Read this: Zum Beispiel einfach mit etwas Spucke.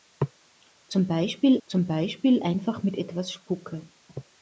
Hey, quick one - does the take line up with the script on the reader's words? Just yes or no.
no